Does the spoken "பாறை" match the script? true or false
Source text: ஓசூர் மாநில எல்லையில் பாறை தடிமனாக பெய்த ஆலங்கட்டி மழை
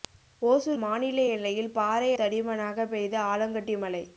true